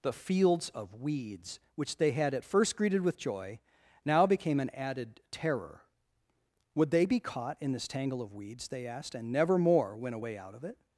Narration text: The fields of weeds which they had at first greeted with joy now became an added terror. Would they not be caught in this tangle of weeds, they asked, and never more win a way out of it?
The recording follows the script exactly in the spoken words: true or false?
false